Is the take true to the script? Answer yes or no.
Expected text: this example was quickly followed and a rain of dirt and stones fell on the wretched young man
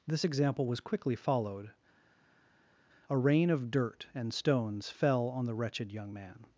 no